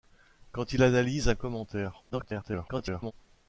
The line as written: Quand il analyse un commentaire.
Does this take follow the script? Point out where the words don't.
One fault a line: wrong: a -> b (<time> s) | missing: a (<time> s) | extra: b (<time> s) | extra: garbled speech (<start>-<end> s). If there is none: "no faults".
extra: garbled speech (2.1-3.1 s)